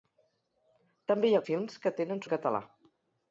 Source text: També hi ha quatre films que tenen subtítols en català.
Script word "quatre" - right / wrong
wrong